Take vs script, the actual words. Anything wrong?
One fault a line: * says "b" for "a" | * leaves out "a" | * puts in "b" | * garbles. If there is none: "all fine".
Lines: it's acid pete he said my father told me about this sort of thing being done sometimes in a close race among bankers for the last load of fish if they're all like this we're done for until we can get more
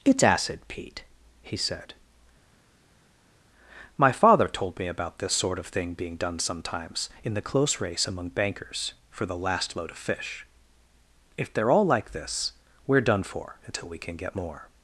* says "the" for "a"